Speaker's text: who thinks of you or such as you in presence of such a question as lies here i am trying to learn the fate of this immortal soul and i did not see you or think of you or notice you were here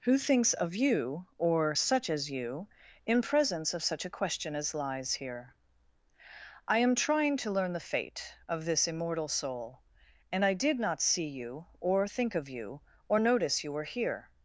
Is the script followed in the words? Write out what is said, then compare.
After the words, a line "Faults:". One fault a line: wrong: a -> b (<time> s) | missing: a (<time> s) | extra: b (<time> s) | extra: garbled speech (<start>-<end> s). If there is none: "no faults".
who thinks of you or such as you in presence of such a question as lies here i am trying to learn the fate of this immortal soul and i did not see you or think of you or notice you were here
Faults:
no faults